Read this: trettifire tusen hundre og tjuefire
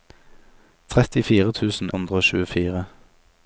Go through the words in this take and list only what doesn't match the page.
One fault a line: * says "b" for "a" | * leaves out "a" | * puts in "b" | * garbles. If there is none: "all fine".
all fine